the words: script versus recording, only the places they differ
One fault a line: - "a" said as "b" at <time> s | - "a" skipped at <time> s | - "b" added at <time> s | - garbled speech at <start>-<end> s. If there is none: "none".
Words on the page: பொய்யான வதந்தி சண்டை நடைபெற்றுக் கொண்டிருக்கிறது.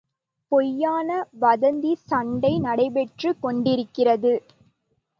none